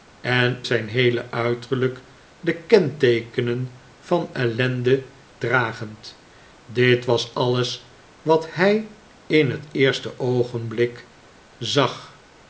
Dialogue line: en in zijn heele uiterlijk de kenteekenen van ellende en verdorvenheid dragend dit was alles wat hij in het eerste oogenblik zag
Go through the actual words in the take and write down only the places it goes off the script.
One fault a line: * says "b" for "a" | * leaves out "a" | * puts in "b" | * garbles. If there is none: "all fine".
* leaves out "in"
* leaves out "en verdorvenheid"